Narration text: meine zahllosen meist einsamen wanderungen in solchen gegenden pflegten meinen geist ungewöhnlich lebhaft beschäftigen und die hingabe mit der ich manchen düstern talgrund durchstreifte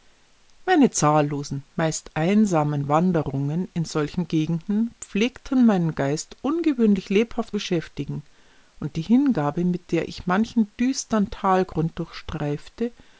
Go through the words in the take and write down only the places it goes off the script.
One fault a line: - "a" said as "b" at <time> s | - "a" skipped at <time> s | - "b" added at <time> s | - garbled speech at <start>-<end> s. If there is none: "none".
none